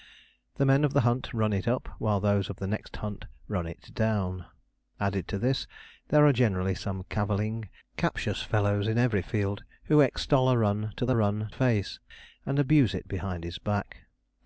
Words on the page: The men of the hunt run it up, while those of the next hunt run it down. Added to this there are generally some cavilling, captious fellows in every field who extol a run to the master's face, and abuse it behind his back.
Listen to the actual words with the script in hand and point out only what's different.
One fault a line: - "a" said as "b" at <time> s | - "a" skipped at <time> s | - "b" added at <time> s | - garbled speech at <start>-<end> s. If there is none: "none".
- "master's" said as "run" at 11.1 s